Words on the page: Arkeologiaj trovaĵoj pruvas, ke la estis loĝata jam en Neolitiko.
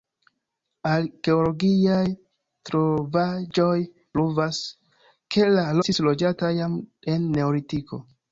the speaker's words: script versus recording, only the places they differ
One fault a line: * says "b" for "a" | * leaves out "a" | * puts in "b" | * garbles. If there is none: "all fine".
all fine